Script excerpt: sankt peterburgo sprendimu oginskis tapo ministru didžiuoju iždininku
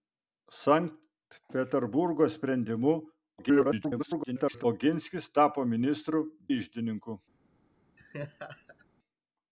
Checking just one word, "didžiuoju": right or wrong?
wrong